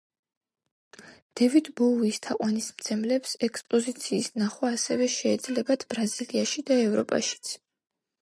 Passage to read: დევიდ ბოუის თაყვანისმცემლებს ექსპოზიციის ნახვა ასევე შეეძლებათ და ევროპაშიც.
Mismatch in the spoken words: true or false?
true